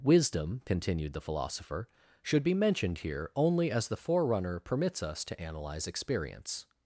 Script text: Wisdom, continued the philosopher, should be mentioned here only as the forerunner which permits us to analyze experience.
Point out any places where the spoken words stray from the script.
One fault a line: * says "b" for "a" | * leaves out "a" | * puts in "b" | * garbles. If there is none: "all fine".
* leaves out "which"